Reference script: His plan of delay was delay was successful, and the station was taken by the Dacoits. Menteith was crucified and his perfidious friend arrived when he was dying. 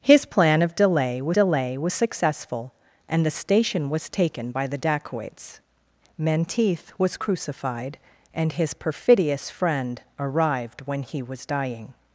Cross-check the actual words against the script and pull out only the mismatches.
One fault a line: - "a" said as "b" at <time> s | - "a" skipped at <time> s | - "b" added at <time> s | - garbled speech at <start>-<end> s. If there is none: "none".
none